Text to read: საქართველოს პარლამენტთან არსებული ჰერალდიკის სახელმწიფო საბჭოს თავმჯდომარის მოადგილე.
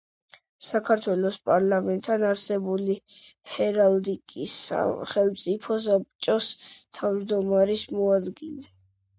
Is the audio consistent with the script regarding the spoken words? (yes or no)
yes